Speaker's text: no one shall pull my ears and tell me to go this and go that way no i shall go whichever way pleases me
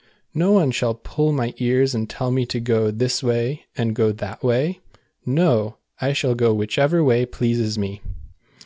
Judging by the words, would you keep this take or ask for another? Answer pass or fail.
fail